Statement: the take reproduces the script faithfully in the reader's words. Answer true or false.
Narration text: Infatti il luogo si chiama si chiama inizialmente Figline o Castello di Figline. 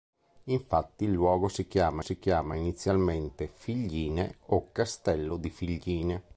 true